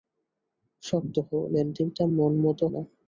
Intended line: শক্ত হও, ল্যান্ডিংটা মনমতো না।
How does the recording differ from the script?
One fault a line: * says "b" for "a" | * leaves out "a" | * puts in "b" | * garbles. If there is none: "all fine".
all fine